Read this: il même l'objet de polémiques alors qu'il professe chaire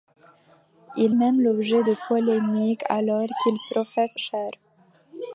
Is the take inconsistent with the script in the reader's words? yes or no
no